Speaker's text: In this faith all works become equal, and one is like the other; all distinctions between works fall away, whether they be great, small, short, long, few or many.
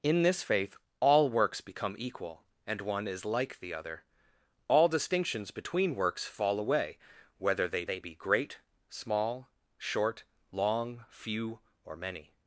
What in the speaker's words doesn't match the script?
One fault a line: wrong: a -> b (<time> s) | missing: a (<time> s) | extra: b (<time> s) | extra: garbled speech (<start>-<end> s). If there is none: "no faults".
extra: they (7.8 s)